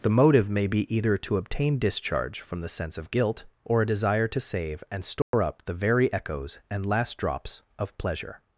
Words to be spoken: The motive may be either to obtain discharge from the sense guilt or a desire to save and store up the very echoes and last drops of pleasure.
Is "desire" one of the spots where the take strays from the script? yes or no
no